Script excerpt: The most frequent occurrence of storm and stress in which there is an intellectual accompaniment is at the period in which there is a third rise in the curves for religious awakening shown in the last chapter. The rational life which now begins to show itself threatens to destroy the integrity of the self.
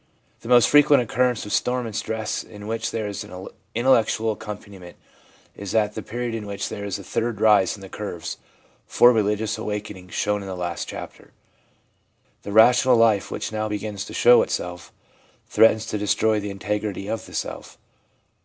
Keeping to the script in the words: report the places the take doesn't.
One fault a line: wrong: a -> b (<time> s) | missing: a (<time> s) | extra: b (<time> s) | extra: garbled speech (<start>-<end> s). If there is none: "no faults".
no faults